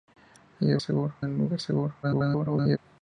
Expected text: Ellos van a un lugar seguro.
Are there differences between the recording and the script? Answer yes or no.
yes